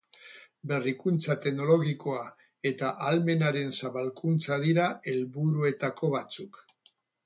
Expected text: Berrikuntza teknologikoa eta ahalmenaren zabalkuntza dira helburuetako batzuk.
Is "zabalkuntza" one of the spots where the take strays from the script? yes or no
no